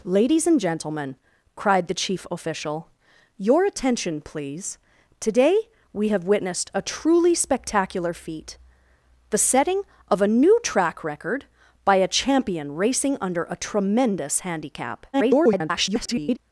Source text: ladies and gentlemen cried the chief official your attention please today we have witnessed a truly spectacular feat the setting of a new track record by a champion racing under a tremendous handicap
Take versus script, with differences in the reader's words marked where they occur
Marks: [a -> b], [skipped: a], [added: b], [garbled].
ladies and gentlemen cried the chief official your attention please today we have witnessed a truly spectacular feat the setting of a new track record by a champion racing under a tremendous handicap [garbled]